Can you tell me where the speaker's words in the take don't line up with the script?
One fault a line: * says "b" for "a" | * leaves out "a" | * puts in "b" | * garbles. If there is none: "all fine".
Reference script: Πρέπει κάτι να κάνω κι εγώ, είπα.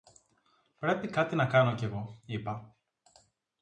all fine